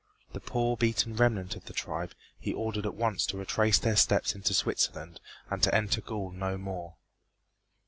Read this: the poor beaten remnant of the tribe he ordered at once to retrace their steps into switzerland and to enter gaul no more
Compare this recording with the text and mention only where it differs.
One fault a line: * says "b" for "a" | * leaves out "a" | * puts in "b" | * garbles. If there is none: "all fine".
all fine